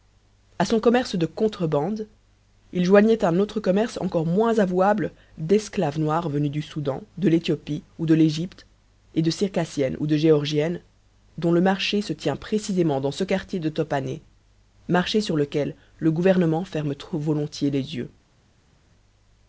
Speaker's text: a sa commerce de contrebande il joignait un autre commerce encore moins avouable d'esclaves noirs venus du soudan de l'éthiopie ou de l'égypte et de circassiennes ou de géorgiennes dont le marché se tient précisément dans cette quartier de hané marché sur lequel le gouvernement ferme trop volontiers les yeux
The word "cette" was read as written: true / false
false